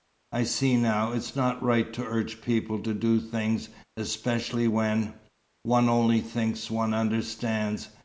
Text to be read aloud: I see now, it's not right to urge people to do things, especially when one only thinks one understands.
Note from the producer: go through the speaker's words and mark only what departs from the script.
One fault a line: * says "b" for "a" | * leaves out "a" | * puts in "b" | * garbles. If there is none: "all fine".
all fine